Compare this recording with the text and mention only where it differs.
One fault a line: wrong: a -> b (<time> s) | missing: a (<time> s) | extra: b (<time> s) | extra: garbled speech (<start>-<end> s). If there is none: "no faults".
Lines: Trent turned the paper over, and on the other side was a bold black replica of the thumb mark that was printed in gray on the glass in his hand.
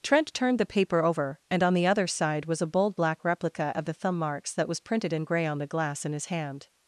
wrong: mark -> marks (4.2 s)